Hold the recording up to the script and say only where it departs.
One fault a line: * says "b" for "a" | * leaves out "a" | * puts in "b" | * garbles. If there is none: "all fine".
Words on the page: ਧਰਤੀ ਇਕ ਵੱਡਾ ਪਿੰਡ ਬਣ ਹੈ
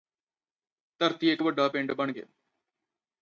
all fine